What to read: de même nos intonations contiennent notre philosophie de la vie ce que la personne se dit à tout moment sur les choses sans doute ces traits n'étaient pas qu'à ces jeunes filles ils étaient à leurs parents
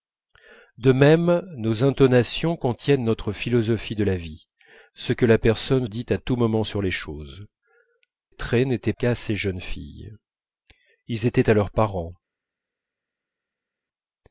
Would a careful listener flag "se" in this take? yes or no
yes